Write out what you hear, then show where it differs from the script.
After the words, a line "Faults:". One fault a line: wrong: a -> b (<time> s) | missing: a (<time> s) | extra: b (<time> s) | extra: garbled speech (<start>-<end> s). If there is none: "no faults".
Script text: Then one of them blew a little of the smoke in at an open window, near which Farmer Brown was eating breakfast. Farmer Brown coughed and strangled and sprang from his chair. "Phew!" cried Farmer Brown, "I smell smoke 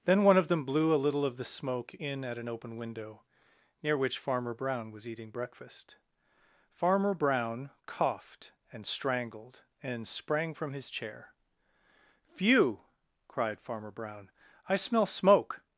Then one of them blew a little of the smoke in at an open window, near which Farmer Brown was eating breakfast. Farmer Brown coughed and strangled and sprang from his chair. "Phew!" cried Farmer Brown, "I smell smoke
Faults:
no faults